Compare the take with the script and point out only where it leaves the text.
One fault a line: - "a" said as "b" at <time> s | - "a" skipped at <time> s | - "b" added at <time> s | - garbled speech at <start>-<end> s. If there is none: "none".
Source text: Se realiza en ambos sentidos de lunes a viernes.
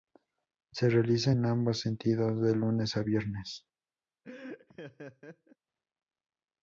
none